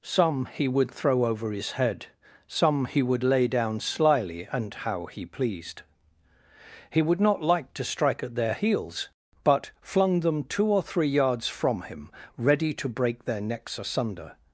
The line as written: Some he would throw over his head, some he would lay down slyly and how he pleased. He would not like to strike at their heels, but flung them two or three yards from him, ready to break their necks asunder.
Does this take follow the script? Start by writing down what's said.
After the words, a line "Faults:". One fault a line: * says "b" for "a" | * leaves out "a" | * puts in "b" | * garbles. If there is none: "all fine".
Some he would throw over his head, some he would lay down slyly and how he pleased. He would not like to strike at their heels, but flung them two or three yards from him, ready to break their necks asunder.
Faults:
all fine